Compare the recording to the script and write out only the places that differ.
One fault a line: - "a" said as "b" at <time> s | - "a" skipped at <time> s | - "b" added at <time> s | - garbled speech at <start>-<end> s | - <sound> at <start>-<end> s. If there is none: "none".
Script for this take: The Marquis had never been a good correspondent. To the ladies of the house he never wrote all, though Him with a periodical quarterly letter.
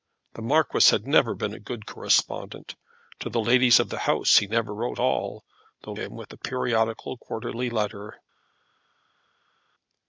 none